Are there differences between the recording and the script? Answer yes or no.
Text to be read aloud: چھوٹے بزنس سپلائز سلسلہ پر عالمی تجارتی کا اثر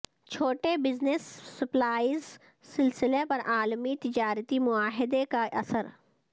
yes